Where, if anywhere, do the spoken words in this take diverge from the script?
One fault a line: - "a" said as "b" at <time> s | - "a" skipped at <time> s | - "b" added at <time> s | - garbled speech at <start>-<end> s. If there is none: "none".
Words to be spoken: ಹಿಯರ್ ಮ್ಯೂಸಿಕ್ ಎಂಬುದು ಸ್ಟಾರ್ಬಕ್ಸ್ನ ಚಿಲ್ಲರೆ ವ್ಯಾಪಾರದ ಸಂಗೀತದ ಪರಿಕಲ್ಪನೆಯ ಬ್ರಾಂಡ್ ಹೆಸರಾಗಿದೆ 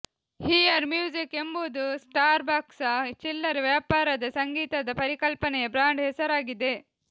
none